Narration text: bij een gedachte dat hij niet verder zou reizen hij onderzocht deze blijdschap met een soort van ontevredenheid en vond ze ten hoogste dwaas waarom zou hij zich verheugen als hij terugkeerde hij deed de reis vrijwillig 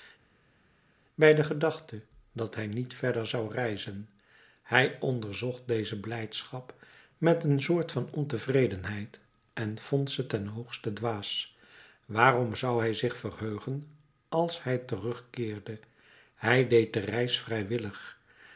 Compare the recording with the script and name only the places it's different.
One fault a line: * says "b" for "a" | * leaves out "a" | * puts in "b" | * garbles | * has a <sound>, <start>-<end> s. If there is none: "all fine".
* says "de" for "een"